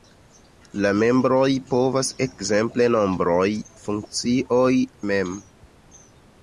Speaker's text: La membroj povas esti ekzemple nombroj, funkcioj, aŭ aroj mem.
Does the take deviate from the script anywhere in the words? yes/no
yes